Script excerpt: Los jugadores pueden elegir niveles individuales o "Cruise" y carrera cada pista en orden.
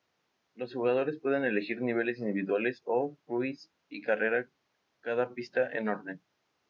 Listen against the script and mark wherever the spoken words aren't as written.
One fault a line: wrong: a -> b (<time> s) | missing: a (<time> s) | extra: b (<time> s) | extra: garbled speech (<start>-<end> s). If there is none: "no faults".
no faults